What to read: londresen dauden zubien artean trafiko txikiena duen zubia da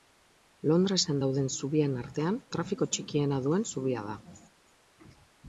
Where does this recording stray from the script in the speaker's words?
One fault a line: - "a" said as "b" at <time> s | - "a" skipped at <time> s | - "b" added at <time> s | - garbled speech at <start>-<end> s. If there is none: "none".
none